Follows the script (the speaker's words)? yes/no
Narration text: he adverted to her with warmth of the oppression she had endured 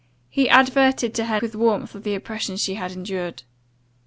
yes